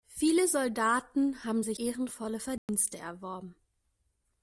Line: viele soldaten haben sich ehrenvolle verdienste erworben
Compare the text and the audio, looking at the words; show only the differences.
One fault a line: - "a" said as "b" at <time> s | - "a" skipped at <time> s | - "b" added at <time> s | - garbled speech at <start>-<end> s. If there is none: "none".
none